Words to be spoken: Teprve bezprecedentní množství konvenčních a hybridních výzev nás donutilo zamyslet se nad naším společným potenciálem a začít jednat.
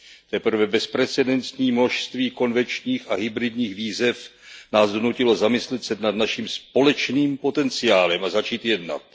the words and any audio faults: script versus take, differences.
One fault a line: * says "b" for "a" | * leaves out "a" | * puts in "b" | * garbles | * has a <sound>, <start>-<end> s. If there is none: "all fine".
all fine